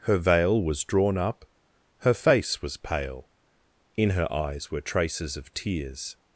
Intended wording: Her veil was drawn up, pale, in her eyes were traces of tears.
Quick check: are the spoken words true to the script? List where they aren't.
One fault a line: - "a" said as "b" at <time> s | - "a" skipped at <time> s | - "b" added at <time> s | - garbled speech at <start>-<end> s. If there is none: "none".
- "her face was" added at 2.0 s